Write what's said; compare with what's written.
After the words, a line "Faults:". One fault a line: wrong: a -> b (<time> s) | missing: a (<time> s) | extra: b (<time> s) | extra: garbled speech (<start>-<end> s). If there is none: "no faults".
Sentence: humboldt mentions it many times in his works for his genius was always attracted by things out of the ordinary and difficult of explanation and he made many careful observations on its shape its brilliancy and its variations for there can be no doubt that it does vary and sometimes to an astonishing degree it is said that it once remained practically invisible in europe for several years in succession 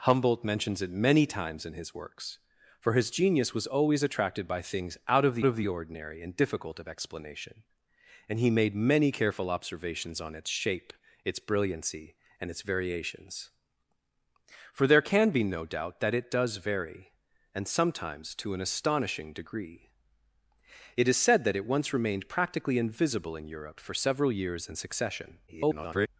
humboldt mentions it many times in his works for his genius was always attracted by things out of the of the ordinary and difficult of explanation and he made many careful observations on its shape its brilliancy and its variations for there can be no doubt that it does vary and sometimes to an astonishing degree it is said that it once remained practically invisible in europe for several years in succession [garbled]
Faults:
extra: of the (5.4 s)
extra: garbled speech (25.5-26.1 s)